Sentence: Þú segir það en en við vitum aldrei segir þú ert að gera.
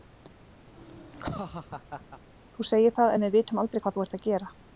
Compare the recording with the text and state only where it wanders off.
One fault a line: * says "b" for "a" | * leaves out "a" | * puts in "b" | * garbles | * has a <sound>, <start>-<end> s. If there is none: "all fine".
* has a laugh, 0.7-2.2 s
* leaves out "en"
* says "hvað" for "segir"